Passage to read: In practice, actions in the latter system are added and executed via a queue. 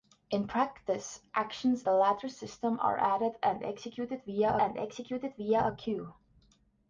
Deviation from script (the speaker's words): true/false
true